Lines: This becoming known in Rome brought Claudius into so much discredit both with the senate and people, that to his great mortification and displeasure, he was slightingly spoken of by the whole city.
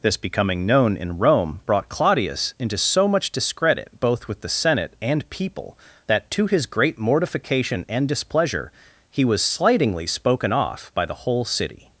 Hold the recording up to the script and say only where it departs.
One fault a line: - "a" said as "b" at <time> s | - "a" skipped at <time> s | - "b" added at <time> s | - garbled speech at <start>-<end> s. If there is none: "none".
- "of" said as "off" at 10.5 s